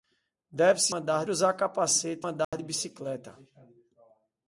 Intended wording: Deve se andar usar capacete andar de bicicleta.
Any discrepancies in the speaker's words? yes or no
no